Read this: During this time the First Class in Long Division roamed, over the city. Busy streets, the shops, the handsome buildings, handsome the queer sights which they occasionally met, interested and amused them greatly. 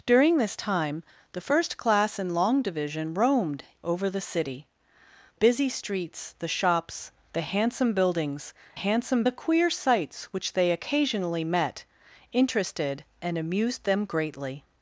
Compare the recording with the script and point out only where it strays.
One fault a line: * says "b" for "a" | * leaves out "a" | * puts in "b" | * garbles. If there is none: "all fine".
all fine